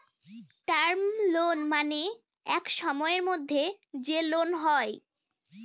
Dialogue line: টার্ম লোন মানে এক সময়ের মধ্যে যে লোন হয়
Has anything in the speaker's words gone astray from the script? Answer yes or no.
no